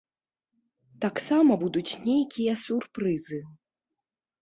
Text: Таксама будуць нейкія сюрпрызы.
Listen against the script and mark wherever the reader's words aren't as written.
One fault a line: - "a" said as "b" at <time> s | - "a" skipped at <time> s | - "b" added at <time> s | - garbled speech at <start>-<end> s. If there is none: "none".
none